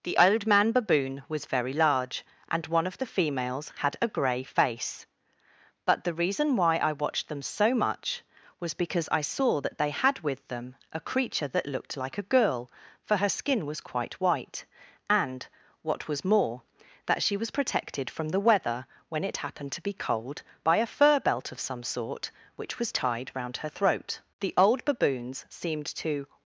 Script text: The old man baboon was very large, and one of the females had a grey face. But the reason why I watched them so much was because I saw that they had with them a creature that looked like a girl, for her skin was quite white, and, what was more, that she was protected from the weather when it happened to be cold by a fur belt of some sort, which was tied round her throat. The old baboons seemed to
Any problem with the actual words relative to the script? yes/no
no